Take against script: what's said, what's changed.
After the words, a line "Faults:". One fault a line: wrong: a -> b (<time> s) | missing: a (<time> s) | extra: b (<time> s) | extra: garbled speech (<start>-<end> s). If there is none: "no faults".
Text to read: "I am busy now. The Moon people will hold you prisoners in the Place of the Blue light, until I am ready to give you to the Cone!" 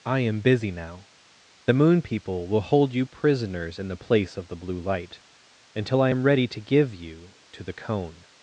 "I am busy now. The Moon people will hold you prisoners in the Place of the Blue light, until I am ready to give you to the Cone!"
Faults:
no faults